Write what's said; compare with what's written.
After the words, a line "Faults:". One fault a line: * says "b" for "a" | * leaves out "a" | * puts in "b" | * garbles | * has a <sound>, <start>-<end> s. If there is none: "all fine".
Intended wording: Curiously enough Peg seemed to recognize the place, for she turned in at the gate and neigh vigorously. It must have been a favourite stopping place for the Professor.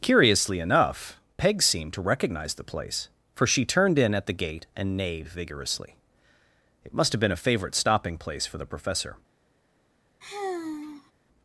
Curiously enough Peg seemed to recognize the place, for she turned in at the gate and neighed vigorously. It must have been a favourite stopping place for the Professor.
Faults:
* says "neighed" for "neigh"
* has a sigh, 10.2-11.1 s